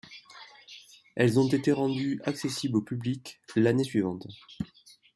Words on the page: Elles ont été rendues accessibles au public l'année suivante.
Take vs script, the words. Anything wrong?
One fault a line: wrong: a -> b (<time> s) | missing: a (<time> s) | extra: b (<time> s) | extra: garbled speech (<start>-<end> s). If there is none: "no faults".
no faults